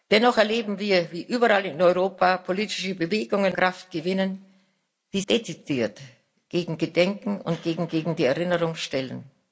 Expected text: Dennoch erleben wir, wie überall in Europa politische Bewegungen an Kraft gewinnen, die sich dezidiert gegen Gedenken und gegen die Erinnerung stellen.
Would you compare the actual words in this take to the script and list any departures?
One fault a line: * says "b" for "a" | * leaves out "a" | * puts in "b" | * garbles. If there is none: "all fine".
* leaves out "an"
* leaves out "sich"
* puts in "gegen"